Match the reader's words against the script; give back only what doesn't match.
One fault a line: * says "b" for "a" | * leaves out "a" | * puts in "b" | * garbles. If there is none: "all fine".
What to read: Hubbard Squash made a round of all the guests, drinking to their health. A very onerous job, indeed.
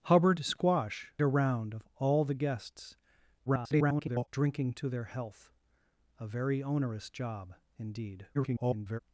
* leaves out "made"
* garbles
* garbles